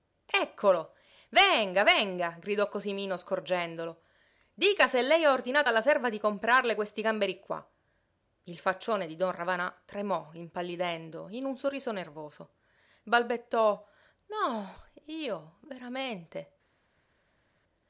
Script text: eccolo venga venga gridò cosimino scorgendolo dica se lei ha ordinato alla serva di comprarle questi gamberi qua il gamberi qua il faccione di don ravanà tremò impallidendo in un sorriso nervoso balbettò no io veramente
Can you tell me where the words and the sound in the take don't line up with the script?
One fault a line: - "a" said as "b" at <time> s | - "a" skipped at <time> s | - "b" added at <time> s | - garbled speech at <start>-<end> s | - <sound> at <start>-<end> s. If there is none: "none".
- "gamberi qua il" skipped at 8.6 s